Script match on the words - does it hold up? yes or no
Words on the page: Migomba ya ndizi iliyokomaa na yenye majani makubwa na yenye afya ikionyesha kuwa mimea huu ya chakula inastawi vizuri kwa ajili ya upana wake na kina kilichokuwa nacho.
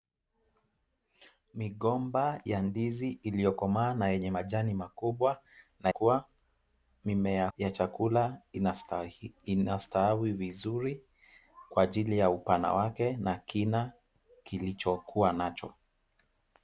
no